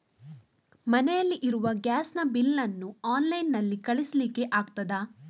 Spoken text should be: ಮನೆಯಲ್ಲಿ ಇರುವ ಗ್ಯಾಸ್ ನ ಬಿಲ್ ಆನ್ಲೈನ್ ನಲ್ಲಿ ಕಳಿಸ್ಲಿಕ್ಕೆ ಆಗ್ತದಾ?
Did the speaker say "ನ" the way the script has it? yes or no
yes